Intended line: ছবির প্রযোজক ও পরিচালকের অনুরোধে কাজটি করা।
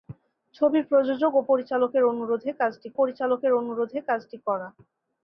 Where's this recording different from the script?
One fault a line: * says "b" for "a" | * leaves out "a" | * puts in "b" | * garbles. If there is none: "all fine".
* puts in "পরিচালকের অনুরোধে কাজটি"